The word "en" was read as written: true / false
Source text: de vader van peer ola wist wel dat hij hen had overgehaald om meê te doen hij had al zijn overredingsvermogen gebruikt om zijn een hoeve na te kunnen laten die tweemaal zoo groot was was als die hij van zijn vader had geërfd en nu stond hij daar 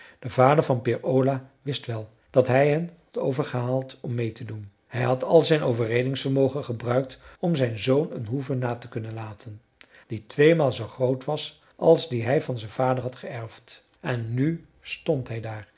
true